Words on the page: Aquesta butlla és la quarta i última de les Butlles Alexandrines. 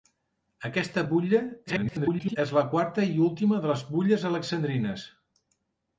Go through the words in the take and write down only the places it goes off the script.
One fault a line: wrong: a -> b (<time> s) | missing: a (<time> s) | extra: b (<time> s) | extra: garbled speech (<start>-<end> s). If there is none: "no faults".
extra: garbled speech (1.7-2.4 s)